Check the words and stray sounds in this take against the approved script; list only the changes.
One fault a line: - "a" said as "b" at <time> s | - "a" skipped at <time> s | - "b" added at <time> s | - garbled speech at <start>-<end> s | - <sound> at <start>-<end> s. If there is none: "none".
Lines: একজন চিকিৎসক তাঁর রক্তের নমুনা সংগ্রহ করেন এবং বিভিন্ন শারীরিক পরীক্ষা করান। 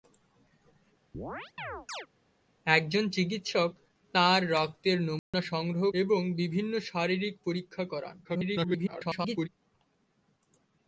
- chirp at 1.1-2.1 s
- dropout at 5.2-5.3 s
- "করেন" skipped at 5.9 s
- garbled speech at 8.2-9.5 s